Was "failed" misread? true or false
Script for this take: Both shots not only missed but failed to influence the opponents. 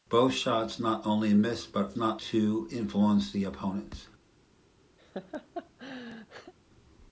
true